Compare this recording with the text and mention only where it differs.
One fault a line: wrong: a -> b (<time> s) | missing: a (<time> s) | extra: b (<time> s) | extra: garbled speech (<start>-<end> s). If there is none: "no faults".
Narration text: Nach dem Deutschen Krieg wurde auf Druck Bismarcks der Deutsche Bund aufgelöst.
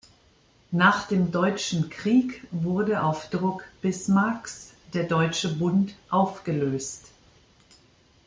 no faults